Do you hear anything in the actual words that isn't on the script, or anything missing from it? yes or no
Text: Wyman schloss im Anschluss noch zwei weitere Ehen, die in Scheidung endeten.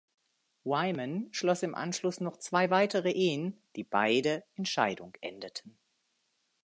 yes